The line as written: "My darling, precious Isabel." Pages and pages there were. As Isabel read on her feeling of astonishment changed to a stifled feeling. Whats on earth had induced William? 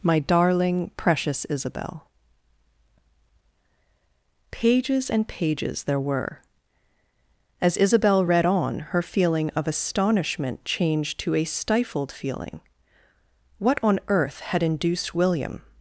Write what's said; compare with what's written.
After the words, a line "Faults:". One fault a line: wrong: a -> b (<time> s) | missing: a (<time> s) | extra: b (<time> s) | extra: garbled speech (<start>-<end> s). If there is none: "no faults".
"My darling, precious Isabel." Pages and pages there were. As Isabel read on her feeling of astonishment changed to a stifled feeling. What on earth had induced William?
Faults:
wrong: Whats -> What (13.6 s)